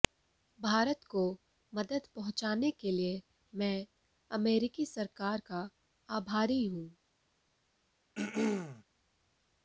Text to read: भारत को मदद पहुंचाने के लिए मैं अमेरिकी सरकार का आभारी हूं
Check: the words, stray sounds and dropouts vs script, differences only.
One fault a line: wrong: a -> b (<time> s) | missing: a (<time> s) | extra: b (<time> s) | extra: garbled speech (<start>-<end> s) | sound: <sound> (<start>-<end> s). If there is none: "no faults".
sound: throat clearing (8.2-8.8 s)